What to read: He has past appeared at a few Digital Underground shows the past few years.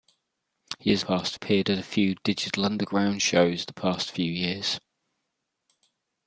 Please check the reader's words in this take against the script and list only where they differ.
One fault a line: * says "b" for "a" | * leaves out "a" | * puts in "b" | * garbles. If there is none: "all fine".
all fine